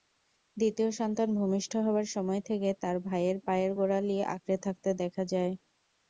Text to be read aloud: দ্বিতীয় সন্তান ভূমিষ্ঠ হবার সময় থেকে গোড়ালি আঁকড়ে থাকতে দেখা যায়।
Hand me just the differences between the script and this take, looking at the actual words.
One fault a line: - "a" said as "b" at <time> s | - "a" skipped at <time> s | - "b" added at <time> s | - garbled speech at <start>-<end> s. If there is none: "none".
- "তার ভাইয়ের পায়ের" added at 2.8 s